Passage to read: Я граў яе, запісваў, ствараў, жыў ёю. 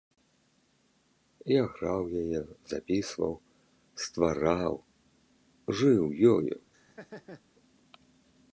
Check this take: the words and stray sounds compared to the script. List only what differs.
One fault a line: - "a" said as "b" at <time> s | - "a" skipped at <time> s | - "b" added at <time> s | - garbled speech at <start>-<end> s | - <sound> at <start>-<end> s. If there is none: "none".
- laugh at 6.7-7.4 s